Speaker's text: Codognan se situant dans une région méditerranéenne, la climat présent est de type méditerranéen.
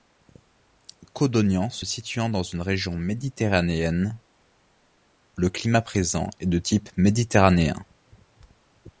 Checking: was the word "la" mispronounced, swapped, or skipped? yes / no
yes